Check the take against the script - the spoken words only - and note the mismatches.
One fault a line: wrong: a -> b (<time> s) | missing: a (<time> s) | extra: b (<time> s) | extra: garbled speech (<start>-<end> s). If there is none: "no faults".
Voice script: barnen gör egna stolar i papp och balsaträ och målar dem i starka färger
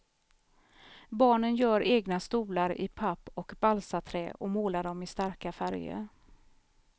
no faults